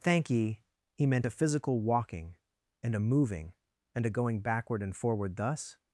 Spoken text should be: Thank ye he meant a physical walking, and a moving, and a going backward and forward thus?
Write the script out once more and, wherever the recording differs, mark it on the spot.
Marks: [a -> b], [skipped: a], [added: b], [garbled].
Thank ye he meant a physical walking, and a moving, and a going backward and forward thus?